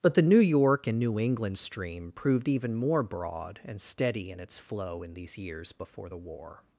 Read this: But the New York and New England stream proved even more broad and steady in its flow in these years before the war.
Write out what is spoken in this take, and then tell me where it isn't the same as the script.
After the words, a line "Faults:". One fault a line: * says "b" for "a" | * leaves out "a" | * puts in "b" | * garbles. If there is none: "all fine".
But the New York and New England stream proved even more broad and steady in its flow in these years before the war.
Faults:
all fine